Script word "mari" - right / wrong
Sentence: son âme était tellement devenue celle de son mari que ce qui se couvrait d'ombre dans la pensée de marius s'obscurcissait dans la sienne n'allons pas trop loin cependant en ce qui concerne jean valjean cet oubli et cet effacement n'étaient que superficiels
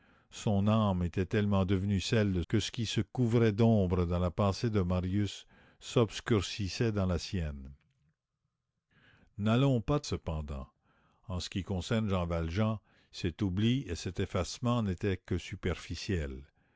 wrong